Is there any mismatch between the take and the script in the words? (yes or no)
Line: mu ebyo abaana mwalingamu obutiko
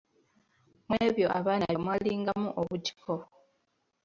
no